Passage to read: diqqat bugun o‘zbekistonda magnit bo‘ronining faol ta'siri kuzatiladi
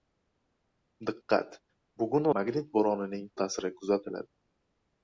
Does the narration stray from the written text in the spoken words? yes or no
yes